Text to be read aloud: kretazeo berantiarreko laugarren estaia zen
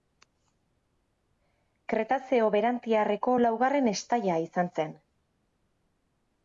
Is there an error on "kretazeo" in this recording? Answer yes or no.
no